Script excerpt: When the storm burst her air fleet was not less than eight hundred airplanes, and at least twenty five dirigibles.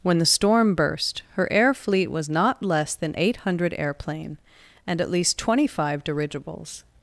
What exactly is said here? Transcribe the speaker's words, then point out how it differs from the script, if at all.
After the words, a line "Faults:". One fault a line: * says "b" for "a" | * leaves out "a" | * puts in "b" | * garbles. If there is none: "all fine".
When the storm burst her air fleet was not less than eight hundred airplane, and at least twenty five dirigibles.
Faults:
* says "airplane" for "airplanes"